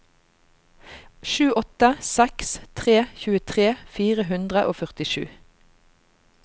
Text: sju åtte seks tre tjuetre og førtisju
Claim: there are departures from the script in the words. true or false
true